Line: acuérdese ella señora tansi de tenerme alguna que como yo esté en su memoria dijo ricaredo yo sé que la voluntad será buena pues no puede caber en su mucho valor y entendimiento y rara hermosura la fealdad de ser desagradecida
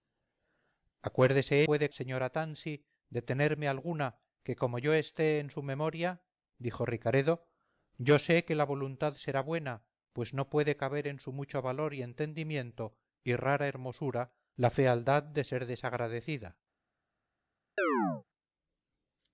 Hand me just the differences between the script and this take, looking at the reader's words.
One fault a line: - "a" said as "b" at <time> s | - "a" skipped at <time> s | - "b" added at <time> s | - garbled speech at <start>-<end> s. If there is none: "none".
- "ella" said as "puede" at 1.6 s